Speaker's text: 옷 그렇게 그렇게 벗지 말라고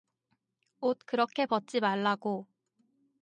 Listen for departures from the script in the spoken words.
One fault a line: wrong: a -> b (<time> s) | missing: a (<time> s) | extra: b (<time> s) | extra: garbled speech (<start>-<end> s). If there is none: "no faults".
missing: 그렇게 (1.4 s)